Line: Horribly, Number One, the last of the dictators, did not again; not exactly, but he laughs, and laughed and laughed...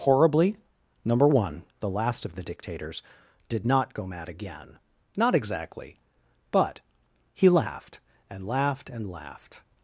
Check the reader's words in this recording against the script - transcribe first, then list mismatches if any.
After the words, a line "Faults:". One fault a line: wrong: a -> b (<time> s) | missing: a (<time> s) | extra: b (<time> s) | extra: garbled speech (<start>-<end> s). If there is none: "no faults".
Horribly, Number One, the last of the dictators, did not go mad again; not exactly, but he laughed, and laughed and laughed...
Faults:
extra: go mad (3.9 s)
wrong: laughs -> laughed (7.5 s)